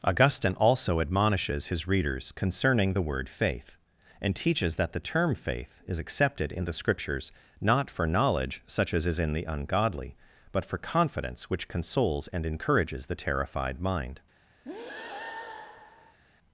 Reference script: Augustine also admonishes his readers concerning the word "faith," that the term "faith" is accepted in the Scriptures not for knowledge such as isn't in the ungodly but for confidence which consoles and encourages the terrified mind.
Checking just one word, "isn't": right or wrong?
wrong